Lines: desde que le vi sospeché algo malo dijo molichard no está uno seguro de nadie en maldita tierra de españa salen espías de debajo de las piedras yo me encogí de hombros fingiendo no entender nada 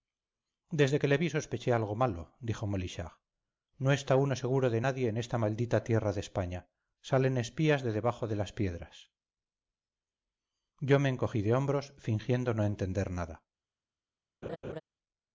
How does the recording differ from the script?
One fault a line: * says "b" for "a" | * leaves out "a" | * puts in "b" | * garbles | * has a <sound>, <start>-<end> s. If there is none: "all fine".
* puts in "esta"
* has a laugh, 14.4-14.8 s